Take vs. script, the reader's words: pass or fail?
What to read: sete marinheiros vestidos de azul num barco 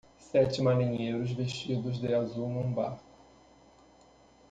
pass